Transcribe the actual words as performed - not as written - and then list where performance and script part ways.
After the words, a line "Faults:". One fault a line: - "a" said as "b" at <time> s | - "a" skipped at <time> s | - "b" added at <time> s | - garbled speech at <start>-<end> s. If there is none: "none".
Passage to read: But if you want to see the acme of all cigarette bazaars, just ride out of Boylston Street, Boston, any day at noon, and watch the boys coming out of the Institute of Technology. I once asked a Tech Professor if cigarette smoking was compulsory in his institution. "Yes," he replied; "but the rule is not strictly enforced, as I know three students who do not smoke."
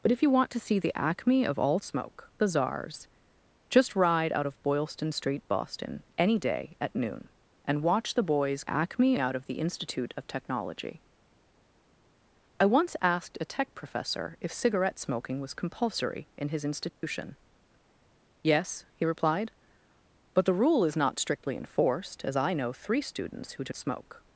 But if you want to see the acme of all smoke bazaars, just ride out of Boylston Street, Boston, any day at noon, and watch the boys acme out of the Institute of Technology. I once asked a Tech Professor if cigarette smoking was compulsory in his institution. "Yes," he replied; "but the rule is not strictly enforced, as I know three students who do smoke."
Faults:
- "cigarette" said as "smoke" at 1.8 s
- "coming" said as "acme" at 8.7 s
- "not" skipped at 23.7 s